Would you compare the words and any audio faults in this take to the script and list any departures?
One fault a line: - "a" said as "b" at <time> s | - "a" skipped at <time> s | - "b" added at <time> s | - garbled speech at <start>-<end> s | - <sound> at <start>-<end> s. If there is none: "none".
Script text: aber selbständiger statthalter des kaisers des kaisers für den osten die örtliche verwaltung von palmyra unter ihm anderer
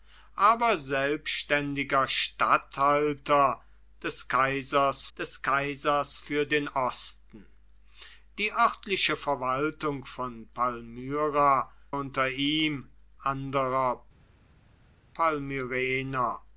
none